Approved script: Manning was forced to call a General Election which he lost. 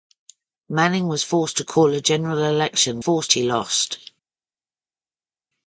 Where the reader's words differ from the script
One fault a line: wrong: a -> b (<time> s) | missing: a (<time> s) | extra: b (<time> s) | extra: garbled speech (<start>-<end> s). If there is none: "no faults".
wrong: which -> forced (3.0 s)